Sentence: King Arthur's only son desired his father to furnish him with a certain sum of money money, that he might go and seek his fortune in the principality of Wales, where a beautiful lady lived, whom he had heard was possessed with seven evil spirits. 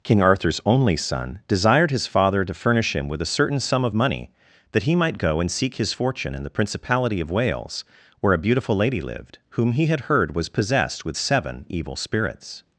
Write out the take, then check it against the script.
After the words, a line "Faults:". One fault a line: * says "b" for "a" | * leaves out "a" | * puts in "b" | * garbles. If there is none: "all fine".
King Arthur's only son desired his father to furnish him with a certain sum of money, that he might go and seek his fortune in the principality of Wales, where a beautiful lady lived, whom he had heard was possessed with seven evil spirits.
Faults:
* leaves out "money"